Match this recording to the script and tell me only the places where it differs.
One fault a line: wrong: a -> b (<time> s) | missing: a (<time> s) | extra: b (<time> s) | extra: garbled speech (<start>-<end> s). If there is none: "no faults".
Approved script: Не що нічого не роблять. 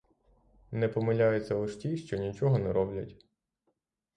extra: помиляються лиш ті (0.9 s)